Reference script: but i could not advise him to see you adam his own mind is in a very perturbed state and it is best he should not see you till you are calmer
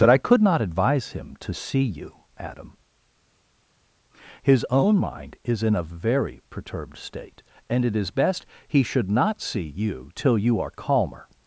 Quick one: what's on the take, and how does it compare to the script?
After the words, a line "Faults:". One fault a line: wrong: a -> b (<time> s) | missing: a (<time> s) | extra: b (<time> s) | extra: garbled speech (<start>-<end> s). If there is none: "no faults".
that i could not advise him to see you adam his own mind is in a very perturbed state and it is best he should not see you till you are calmer
Faults:
wrong: but -> that (0.0 s)